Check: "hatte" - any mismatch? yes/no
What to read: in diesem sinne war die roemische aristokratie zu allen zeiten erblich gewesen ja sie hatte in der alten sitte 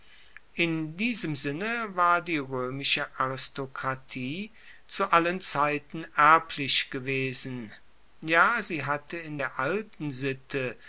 no